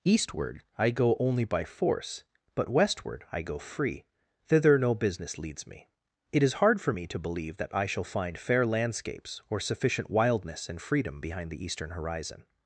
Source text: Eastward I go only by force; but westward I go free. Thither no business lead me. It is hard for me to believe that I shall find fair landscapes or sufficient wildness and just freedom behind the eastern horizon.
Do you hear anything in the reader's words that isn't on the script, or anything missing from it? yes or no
yes